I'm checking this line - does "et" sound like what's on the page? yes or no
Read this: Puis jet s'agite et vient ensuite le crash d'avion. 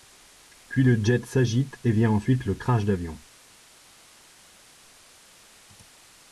yes